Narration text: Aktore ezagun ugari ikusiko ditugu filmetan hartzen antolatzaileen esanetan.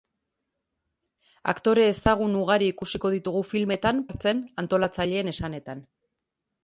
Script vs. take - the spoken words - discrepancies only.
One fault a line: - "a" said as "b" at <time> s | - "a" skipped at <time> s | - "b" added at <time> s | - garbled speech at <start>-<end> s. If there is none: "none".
none